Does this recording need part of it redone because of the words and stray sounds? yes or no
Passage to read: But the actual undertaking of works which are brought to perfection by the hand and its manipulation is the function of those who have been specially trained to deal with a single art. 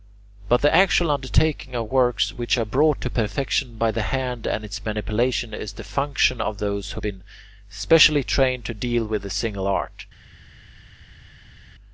yes